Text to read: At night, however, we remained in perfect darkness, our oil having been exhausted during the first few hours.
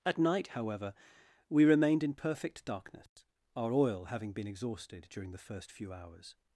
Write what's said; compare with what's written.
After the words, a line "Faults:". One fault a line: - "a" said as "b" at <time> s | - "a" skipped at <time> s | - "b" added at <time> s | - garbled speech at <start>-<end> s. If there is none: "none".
At night, however, we remained in perfect darkness, our oil having been exhausted during the first few hours.
Faults:
none